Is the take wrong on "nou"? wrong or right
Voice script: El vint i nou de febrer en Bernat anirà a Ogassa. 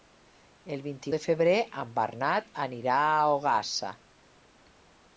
wrong